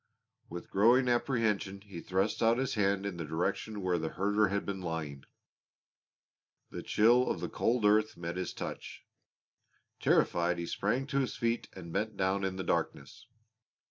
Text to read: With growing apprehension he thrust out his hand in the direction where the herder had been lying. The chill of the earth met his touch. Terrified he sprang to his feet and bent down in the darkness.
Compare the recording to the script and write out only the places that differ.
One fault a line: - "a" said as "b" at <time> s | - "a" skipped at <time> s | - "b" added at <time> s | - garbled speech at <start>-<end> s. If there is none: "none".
- "cold" added at 7.5 s